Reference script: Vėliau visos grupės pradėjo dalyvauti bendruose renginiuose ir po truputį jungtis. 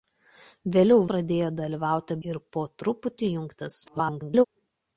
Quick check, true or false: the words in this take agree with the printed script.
false